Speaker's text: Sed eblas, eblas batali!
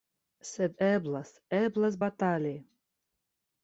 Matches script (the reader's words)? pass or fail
pass